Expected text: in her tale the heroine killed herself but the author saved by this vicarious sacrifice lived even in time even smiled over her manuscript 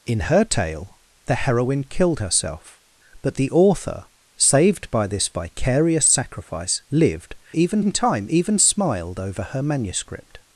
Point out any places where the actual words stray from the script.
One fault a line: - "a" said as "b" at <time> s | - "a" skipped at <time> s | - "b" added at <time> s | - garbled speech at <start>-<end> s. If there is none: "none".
none